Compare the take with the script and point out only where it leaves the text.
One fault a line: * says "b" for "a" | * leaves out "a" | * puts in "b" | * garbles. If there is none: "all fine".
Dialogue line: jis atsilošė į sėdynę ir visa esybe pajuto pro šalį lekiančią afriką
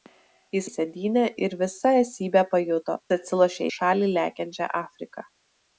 * leaves out "atsilošė"
* says "atsilošė" for "pro"